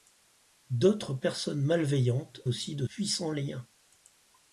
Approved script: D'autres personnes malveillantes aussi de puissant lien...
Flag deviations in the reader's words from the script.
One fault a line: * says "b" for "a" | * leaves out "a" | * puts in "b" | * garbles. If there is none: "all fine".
all fine